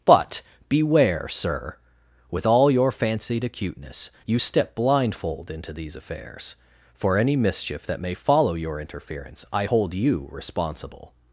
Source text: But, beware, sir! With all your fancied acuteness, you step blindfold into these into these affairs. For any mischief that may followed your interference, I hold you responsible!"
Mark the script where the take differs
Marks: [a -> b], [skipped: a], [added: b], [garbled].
But, beware, sir! With all your fancied acuteness, you step blindfold into these [skipped: into these] affairs. For any mischief that may [followed -> follow] your interference, I hold you responsible!"